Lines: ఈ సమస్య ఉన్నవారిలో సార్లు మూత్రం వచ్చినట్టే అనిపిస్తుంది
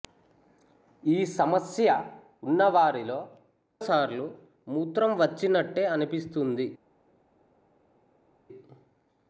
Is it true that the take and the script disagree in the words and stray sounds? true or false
false